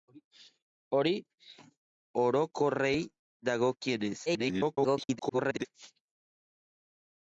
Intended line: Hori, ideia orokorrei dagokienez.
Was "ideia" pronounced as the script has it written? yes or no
no